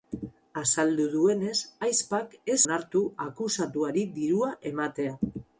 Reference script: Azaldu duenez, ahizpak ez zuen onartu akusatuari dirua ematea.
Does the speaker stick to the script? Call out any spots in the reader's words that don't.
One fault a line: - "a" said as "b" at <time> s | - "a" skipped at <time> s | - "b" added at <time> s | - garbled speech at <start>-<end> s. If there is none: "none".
- "zuen" skipped at 2.6 s